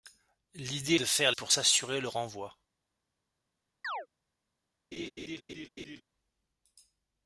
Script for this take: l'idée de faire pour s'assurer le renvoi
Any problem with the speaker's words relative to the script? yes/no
no